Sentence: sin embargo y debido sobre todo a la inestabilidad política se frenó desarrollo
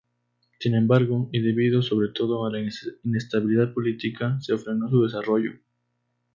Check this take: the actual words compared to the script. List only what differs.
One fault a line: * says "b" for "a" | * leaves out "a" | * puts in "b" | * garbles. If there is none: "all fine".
* puts in "su"